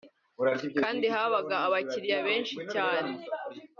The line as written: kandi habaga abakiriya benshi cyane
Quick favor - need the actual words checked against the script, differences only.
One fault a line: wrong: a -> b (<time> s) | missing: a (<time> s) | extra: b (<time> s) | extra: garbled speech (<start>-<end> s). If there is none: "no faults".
no faults